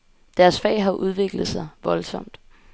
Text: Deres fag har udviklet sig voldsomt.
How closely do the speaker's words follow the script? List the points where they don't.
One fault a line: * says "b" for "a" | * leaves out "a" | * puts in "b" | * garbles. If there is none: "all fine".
all fine